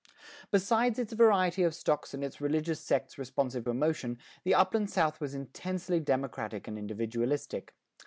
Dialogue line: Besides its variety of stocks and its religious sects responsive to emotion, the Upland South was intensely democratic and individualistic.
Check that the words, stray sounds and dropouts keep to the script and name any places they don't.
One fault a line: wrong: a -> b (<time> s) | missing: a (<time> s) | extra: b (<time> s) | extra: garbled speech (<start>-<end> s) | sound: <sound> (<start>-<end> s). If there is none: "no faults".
missing: to (3.7 s)